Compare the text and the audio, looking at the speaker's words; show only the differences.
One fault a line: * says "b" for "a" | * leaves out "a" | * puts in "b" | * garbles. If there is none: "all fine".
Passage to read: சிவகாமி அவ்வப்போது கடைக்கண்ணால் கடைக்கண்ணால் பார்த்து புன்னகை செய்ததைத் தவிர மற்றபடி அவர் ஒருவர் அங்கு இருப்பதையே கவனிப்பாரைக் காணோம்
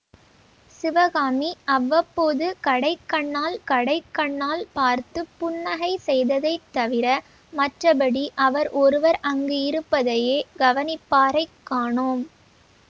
all fine